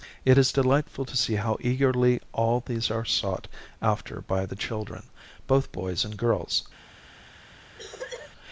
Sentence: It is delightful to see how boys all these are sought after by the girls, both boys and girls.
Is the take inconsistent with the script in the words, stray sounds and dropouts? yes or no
yes